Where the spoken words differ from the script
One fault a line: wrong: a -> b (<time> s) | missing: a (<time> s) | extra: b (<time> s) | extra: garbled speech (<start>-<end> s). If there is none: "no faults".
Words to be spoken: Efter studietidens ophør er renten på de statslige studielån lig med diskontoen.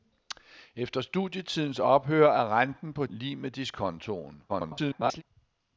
missing: de statslige studielån (3.0 s)
extra: garbled speech (4.5-5.2 s)